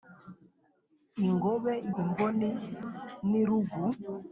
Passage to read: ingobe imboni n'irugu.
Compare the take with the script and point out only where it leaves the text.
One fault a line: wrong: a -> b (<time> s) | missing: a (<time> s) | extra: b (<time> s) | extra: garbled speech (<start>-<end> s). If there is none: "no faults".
no faults